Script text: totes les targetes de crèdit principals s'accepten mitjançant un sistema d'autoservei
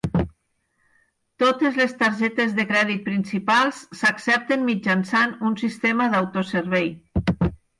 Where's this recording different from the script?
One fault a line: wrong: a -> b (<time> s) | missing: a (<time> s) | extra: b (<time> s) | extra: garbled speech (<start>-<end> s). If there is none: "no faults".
no faults